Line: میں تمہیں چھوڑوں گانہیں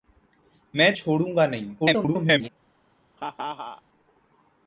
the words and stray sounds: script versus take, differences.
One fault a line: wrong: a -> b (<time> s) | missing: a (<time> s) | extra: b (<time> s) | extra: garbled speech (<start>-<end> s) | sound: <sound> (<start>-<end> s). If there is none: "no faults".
missing: تمہیں (0.9 s)
extra: garbled speech (1.8-2.5 s)
sound: laugh (3.2-3.8 s)